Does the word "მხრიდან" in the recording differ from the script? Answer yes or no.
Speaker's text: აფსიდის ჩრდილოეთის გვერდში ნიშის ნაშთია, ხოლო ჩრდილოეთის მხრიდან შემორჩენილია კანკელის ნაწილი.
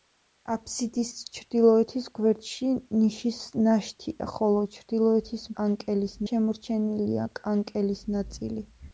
yes